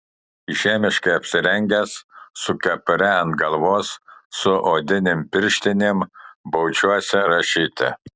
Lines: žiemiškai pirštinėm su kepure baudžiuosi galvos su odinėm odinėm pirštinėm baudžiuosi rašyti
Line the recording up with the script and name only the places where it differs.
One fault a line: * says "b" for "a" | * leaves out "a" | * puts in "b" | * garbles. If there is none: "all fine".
* says "apsirengęs" for "pirštinėm"
* says "ant" for "baudžiuosi"
* leaves out "odinėm"